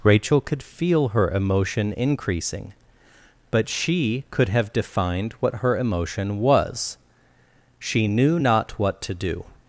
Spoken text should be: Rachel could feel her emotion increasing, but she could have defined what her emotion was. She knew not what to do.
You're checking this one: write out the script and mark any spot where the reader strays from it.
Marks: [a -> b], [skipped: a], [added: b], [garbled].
Rachel could feel her emotion increasing, but she could have defined what her emotion was. She knew not what to do.